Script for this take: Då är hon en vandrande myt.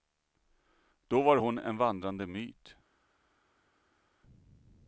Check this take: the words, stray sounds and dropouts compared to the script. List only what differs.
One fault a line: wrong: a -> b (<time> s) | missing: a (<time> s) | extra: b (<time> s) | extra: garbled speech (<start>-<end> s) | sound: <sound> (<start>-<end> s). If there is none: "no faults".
wrong: är -> var (1.2 s)